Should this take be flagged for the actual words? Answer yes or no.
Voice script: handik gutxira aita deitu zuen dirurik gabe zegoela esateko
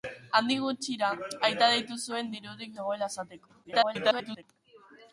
yes